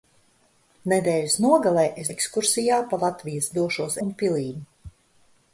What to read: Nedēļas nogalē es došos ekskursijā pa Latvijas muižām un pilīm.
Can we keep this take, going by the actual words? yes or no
no